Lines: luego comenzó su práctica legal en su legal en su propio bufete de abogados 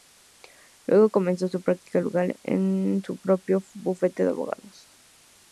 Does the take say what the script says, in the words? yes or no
no